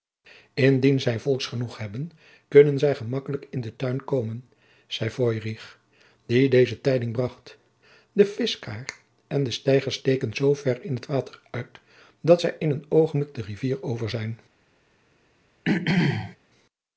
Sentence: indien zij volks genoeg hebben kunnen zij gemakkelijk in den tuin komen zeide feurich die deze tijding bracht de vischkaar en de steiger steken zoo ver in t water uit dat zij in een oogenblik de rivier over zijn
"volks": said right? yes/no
yes